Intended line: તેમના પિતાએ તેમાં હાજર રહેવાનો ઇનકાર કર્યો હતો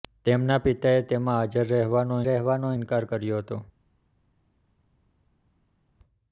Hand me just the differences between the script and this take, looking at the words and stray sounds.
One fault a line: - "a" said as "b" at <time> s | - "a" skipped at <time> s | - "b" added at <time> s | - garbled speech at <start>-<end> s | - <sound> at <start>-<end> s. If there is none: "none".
- "રહેવાનો" added at 2.3 s